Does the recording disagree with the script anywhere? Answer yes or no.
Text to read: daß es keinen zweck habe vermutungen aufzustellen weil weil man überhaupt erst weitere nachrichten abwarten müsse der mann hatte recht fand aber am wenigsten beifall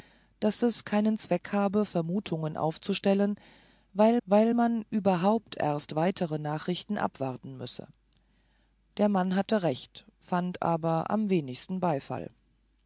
no